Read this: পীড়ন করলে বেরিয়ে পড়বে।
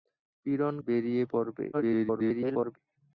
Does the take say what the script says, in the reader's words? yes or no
no